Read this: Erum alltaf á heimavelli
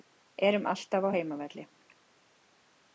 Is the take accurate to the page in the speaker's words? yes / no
yes